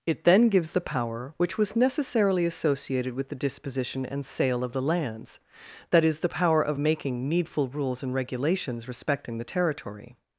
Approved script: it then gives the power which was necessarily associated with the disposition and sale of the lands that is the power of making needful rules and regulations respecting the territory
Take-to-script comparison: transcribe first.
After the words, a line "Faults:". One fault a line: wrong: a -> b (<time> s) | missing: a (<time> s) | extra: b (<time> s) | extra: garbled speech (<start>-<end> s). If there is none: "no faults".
it then gives the power which was necessarily associated with the disposition and sale of the lands that is the power of making needful rules and regulations respecting the territory
Faults:
no faults